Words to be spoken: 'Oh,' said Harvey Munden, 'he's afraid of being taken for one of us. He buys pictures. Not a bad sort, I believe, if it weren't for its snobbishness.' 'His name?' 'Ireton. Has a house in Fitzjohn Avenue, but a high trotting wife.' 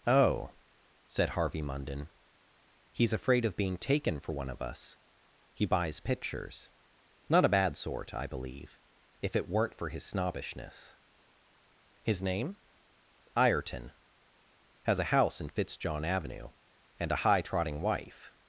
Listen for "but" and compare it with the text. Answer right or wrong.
wrong